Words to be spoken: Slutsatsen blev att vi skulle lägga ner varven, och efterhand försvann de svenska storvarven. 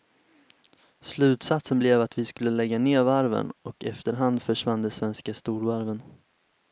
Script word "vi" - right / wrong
right